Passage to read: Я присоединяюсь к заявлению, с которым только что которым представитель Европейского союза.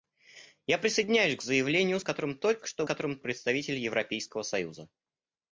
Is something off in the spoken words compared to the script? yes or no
no